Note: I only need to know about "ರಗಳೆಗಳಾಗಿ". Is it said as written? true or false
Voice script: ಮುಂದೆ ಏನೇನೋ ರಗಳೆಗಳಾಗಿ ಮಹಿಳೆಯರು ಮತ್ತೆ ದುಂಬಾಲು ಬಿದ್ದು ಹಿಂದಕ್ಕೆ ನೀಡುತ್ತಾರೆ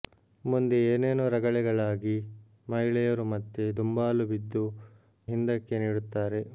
true